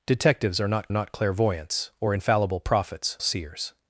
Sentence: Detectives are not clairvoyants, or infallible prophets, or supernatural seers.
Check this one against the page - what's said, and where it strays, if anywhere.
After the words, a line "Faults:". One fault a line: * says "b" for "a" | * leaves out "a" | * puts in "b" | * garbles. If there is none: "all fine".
Detectives are not not clairvoyants, or infallible prophets, seers.
Faults:
* puts in "not"
* leaves out "or supernatural"